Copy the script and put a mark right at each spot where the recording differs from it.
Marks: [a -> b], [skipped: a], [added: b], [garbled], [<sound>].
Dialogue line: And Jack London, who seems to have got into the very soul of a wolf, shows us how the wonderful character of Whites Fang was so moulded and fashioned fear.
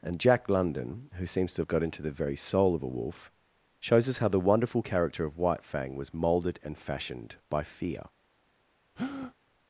And Jack London, who seems to have got into the very soul of a wolf, shows us how the wonderful character of [Whites -> White] Fang was [skipped: so] moulded and fashioned [added: by] fear. [breath]